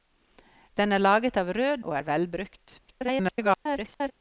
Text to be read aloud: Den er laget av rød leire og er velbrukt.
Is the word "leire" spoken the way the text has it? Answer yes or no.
no